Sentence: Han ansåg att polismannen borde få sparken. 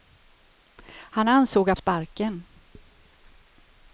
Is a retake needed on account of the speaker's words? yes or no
yes